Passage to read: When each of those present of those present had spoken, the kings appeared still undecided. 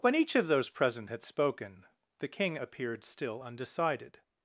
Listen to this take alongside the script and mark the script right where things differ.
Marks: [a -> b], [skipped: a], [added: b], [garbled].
When each of those present [skipped: of those present] had spoken, the [kings -> king] appeared still undecided.